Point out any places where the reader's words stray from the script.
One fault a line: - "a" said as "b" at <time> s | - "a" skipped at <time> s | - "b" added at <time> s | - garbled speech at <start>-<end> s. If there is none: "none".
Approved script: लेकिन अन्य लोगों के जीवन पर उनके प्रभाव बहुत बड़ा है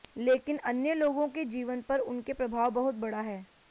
none